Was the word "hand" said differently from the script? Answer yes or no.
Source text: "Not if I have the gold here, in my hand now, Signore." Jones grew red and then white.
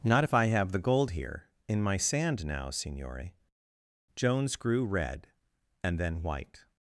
yes